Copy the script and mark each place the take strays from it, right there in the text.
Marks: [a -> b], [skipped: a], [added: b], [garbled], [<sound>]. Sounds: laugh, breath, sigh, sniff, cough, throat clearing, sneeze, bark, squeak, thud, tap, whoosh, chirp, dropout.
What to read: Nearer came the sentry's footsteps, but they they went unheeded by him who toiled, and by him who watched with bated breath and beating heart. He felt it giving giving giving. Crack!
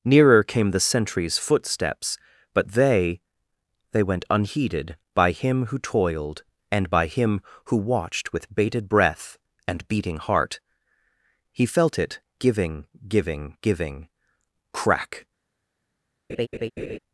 Nearer came the sentry's footsteps, but they they went unheeded by him who toiled, and by him who watched with bated breath and beating heart. He felt it giving giving giving. Crack! [laugh]